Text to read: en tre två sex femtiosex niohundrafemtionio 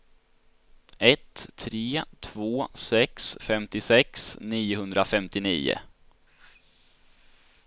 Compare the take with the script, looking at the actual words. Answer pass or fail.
fail